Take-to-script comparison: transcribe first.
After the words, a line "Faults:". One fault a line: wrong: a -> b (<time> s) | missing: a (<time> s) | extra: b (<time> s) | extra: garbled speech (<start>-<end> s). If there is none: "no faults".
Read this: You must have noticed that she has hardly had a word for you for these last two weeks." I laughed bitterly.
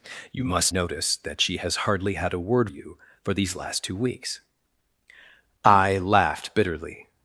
You must noticed that she has hardly had a word you for these last two weeks." I laughed bitterly.
Faults:
missing: have (0.7 s)
missing: for (2.7 s)